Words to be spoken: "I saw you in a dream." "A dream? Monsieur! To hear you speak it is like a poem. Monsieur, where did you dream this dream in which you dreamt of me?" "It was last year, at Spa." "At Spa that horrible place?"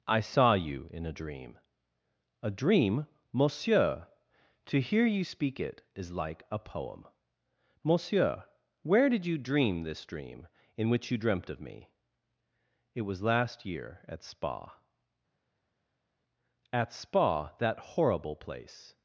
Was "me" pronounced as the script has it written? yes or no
yes